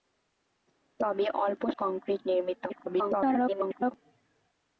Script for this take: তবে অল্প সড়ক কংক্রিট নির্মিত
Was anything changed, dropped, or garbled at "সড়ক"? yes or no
yes